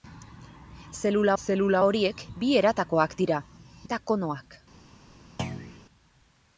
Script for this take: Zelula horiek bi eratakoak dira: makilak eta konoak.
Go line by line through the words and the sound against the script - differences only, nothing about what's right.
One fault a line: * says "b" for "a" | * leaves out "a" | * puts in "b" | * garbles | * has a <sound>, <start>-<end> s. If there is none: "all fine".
* puts in "zelula"
* leaves out "makilak"
* has a thud, 5.4-5.8 s